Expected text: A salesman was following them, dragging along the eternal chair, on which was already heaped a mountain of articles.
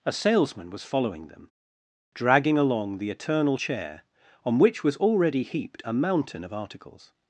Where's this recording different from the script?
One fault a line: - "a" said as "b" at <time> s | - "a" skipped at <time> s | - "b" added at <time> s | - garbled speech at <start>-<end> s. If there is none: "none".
none